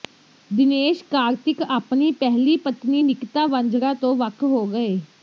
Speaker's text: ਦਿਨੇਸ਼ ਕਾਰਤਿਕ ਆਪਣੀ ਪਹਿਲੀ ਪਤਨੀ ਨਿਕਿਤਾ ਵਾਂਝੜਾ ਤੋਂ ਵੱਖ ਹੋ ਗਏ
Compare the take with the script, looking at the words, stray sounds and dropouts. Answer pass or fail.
pass